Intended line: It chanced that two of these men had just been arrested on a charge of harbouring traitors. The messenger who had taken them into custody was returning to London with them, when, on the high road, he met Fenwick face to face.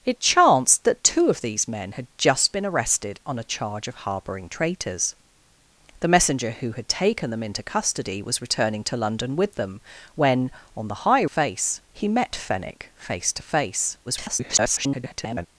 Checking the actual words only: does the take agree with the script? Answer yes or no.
no